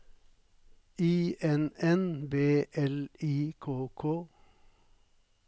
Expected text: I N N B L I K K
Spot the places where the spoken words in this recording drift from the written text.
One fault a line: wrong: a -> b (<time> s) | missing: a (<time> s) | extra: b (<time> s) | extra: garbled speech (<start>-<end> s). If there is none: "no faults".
no faults